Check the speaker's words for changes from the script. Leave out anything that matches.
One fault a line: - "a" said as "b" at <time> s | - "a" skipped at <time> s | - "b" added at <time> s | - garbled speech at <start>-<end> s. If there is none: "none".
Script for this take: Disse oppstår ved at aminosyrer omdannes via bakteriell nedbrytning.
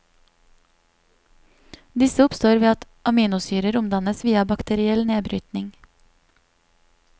none